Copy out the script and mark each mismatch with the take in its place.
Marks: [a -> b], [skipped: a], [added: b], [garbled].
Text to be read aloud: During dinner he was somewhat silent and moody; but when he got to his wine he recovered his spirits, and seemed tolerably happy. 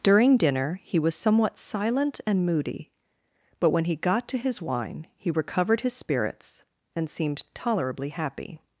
During dinner he was somewhat silent and moody; but when he got to his wine he recovered his spirits, and seemed tolerably happy.